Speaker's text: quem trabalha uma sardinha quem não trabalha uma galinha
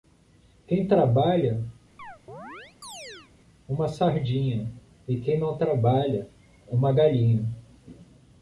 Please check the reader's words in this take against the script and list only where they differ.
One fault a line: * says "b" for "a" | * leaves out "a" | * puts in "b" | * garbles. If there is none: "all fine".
* puts in "e"